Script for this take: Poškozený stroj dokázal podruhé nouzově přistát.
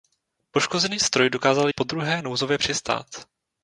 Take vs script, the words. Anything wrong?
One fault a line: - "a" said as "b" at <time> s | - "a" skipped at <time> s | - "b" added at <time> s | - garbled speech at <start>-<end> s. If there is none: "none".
none